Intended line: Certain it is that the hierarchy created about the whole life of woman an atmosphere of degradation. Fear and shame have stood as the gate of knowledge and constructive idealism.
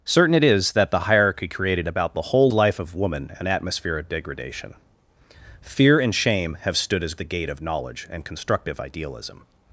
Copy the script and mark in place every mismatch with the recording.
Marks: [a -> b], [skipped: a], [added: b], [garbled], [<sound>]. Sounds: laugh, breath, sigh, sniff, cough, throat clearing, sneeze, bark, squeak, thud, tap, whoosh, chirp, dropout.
Certain it is that the hierarchy created about the whole life of woman an atmosphere of degradation. Fear and shame have stood as the gate of knowledge and constructive idealism.